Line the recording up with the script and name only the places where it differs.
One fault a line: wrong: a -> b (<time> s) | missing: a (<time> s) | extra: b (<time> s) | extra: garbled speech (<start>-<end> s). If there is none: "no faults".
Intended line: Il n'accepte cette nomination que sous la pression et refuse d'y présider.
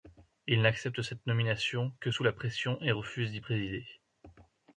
no faults